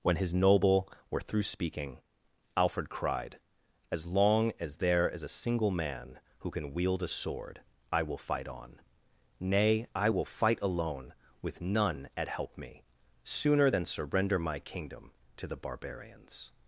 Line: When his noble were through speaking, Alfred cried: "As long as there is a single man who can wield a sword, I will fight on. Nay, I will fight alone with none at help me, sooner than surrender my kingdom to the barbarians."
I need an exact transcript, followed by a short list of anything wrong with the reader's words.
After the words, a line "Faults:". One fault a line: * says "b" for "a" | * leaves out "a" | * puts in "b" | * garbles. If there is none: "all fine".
When his noble were through speaking, Alfred cried: "As long as there is a single man who can wield a sword, I will fight on. Nay, I will fight alone with none at help me, sooner than surrender my kingdom to the barbarians."
Faults:
all fine